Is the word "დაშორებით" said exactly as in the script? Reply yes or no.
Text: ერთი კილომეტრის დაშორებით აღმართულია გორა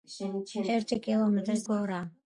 no